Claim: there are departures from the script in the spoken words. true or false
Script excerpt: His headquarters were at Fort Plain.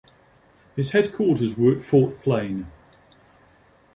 false